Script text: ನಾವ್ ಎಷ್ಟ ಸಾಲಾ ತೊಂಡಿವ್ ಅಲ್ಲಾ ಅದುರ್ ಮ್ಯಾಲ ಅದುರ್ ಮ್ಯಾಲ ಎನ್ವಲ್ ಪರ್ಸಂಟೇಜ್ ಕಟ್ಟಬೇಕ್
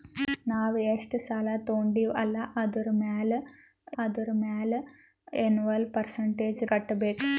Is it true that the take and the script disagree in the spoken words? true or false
false